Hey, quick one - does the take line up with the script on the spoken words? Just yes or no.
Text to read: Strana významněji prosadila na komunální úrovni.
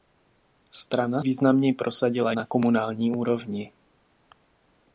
yes